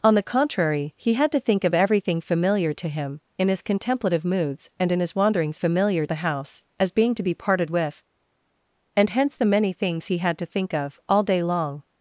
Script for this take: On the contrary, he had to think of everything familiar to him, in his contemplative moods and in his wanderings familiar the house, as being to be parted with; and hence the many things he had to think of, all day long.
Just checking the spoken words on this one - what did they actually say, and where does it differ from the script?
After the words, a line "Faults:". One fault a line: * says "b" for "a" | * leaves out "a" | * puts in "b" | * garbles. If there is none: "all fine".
On the contrary, he had to think of everything familiar to him, in his contemplative moods and in his wanderings familiar the house, as being to be parted with; and hence the many things he had to think of, all day long.
Faults:
all fine